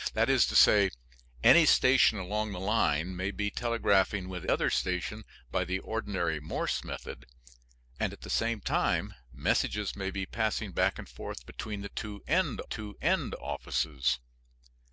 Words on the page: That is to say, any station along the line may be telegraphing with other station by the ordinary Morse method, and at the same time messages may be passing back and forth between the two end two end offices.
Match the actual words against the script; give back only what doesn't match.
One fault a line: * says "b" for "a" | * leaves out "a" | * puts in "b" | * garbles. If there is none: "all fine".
all fine